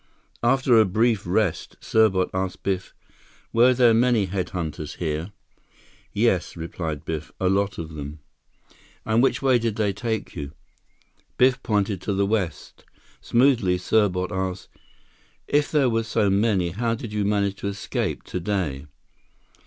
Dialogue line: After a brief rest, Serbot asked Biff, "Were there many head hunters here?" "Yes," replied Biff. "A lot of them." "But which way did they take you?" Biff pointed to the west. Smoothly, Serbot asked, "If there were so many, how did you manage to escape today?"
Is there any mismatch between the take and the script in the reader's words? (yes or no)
yes